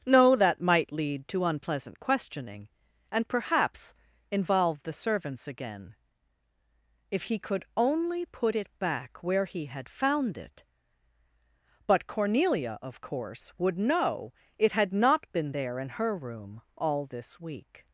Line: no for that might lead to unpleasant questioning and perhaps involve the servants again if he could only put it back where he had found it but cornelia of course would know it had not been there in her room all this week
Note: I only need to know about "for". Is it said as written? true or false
false